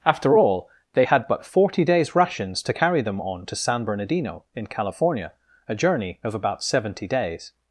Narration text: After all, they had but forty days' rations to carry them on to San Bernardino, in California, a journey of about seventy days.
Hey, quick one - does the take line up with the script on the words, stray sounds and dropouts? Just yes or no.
yes